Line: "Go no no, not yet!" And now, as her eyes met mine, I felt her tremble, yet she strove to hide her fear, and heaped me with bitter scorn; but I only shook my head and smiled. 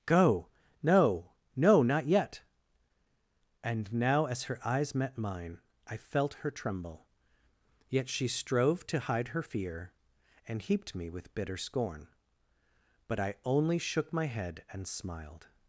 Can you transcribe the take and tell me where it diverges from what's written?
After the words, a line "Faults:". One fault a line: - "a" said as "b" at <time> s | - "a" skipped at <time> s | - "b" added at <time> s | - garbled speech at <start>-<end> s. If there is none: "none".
"Go no no, not yet!" And now, as her eyes met mine, I felt her tremble, yet she strove to hide her fear, and heaped me with bitter scorn; but I only shook my head and smiled.
Faults:
none